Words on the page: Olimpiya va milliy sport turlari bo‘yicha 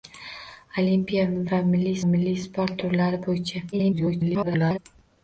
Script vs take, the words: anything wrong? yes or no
yes